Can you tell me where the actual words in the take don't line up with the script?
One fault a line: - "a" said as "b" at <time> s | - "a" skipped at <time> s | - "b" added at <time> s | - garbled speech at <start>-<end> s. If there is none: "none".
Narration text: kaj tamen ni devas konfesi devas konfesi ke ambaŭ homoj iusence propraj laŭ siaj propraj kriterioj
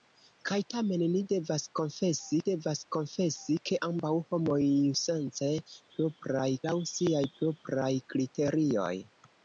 none